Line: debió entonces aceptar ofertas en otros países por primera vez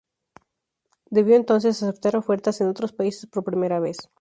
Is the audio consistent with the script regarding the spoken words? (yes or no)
yes